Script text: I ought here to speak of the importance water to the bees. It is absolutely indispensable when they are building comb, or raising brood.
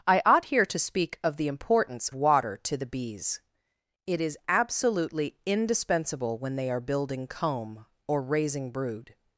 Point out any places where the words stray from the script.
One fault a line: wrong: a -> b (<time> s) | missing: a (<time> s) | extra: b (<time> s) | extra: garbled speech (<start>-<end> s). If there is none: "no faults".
no faults